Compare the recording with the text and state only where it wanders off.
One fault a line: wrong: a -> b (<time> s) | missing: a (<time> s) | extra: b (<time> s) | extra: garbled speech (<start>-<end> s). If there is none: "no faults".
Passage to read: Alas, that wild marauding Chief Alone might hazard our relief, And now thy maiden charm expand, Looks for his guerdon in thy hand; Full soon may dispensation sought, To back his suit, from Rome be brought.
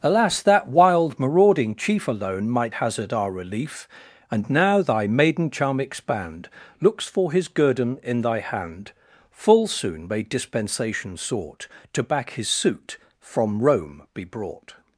no faults